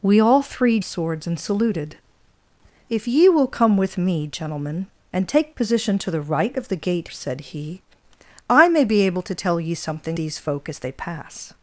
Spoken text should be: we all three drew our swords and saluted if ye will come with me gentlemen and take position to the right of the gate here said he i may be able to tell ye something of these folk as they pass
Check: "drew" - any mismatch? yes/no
yes